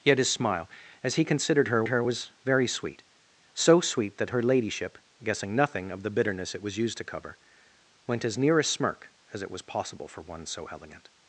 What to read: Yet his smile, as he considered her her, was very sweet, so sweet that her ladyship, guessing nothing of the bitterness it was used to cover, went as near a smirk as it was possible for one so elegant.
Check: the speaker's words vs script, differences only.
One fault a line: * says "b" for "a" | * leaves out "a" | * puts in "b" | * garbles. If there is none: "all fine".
all fine